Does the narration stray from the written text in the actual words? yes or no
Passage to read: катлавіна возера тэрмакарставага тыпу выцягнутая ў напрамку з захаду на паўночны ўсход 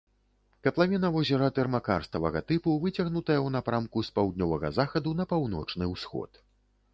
yes